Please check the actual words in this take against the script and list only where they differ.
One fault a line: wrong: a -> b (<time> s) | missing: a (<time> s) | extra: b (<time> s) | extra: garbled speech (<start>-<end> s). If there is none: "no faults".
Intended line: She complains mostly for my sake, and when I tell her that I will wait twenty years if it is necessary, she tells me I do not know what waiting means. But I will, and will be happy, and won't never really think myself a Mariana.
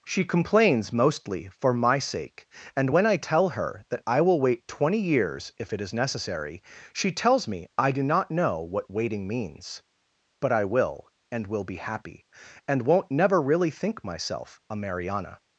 no faults